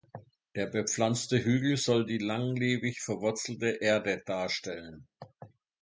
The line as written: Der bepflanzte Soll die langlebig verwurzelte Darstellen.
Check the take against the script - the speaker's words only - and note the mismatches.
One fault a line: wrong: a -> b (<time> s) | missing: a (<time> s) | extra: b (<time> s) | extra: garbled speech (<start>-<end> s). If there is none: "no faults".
extra: Hügel (1.4 s)
extra: Erde (3.8 s)